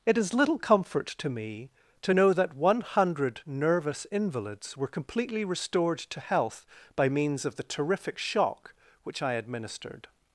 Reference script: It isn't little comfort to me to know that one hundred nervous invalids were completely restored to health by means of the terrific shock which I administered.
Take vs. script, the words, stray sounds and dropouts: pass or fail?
fail